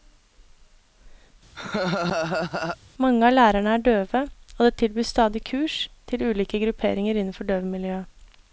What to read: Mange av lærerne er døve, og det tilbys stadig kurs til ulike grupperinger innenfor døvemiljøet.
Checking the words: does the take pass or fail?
pass